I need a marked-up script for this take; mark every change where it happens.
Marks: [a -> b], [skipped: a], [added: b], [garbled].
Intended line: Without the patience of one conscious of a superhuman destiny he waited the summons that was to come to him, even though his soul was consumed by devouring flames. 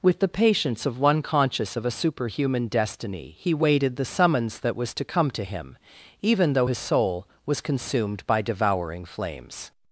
[Without -> With] the patience of one conscious of a superhuman destiny he waited the summons that was to come to him, even though his soul was consumed by devouring flames.